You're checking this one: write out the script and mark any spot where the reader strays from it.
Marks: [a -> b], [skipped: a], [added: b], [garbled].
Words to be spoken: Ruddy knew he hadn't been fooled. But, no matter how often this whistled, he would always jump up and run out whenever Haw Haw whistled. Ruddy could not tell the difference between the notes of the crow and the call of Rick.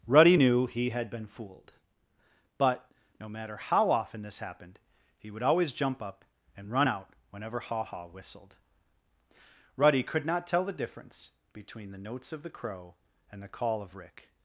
Ruddy knew he [hadn't -> had] been fooled. But, no matter how often this [whistled, -> happened] he would always jump up and run out whenever Haw Haw whistled. Ruddy could not tell the difference between the notes of the crow and the call of Rick.